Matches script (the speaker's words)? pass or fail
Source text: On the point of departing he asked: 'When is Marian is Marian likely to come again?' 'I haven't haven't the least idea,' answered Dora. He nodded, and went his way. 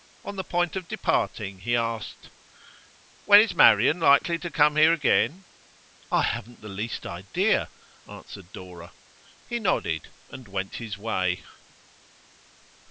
fail